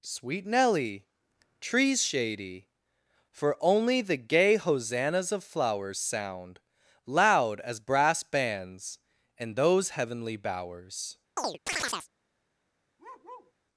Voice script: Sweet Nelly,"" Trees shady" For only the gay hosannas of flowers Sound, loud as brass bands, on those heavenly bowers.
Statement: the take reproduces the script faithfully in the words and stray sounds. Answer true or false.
false